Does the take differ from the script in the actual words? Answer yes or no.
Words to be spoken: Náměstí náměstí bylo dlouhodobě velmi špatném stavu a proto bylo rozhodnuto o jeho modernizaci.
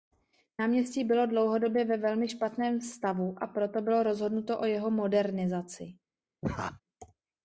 yes